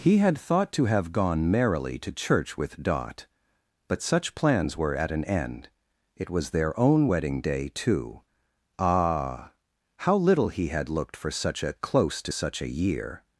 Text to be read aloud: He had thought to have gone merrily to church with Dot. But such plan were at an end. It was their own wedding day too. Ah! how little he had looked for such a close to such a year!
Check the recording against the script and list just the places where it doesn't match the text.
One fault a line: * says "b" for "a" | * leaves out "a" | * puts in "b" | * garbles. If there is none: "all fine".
* says "plans" for "plan"